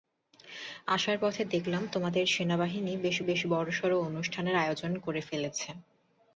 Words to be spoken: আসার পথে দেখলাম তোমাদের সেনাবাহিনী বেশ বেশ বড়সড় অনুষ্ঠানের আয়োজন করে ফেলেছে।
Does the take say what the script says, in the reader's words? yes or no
yes